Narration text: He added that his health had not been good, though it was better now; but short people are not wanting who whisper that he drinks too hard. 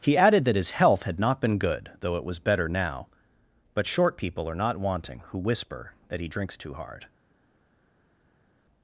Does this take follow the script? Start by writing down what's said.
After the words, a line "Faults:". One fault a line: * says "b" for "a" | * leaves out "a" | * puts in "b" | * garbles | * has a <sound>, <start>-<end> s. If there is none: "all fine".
He added that his health had not been good, though it was better now; but short people are not wanting who whisper that he drinks too hard.
Faults:
all fine